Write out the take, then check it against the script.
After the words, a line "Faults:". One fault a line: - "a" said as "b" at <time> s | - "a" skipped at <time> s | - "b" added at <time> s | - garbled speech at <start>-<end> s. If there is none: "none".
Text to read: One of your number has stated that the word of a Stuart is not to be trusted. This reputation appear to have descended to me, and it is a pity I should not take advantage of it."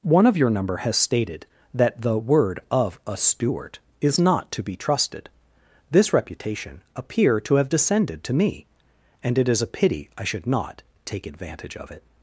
One of your number has stated that the word of a Stuart is not to be trusted. This reputation appear to have descended to me, and it is a pity I should not take advantage of it."
Faults:
none